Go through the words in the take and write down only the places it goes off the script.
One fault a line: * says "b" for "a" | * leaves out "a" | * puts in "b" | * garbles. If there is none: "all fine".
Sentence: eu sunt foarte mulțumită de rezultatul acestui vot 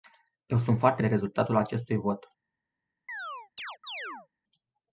* leaves out "mulțumită"